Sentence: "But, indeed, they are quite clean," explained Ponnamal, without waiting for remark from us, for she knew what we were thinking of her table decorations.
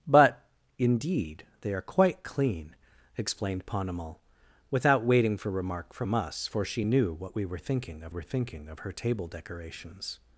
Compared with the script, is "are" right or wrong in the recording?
right